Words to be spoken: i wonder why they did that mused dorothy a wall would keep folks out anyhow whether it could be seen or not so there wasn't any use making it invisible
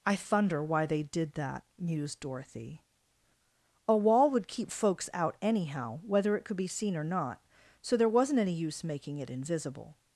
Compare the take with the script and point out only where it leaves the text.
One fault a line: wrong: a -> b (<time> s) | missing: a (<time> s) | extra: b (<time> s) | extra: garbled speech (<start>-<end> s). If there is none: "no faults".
wrong: wonder -> thunder (0.1 s)